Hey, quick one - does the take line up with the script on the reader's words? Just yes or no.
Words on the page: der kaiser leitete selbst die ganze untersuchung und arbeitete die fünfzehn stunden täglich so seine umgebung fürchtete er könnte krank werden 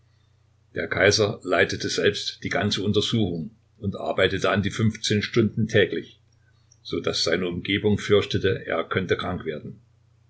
no